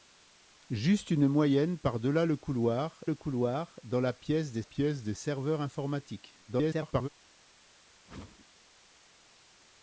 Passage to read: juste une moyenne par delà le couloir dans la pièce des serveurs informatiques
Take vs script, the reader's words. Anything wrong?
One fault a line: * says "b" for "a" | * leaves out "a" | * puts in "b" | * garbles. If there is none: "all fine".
* puts in "le couloir"
* puts in "pièce des"
* garbles